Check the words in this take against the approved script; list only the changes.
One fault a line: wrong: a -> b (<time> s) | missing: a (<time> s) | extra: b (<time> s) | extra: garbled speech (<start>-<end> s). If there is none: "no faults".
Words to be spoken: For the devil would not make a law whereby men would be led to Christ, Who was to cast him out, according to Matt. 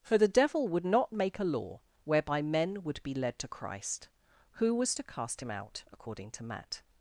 no faults